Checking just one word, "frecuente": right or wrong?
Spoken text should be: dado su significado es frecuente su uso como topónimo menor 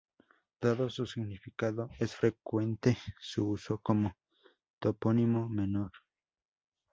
right